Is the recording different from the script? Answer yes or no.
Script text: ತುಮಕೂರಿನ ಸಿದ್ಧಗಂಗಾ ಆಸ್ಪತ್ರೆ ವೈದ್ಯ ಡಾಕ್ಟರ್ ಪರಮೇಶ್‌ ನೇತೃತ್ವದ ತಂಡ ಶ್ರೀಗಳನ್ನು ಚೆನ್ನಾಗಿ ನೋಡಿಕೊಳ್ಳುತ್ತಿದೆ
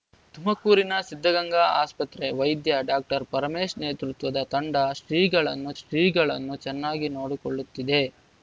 yes